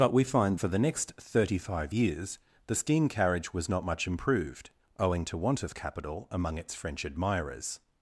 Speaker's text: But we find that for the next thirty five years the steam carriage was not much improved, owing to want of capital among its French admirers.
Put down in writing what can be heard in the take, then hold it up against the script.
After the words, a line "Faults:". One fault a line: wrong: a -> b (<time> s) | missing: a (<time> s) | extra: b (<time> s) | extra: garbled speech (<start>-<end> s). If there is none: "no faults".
But we find for the next thirty five years the steam carriage was not much improved, owing to want of capital among its French admirers.
Faults:
missing: that (0.6 s)